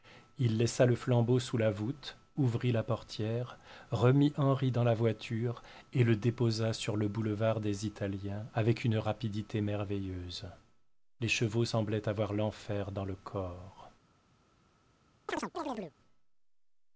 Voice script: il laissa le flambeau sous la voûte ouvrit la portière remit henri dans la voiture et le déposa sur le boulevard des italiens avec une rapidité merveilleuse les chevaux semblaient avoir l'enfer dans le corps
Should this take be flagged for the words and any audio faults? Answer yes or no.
yes